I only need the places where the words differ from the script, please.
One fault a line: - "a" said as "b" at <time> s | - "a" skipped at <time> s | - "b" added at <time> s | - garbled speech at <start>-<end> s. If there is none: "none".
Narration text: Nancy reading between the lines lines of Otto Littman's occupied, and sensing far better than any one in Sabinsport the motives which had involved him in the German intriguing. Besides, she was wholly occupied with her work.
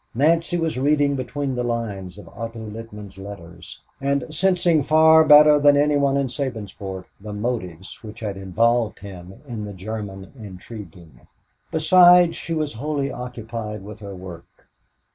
- "was" added at 0.6 s
- "lines" skipped at 2.2 s
- "occupied" said as "letters" at 3.2 s